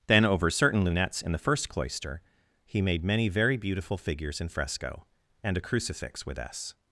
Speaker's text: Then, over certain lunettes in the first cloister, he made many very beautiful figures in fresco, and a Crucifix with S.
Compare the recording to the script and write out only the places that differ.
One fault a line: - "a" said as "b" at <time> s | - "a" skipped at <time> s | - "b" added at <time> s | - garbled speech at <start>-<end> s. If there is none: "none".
none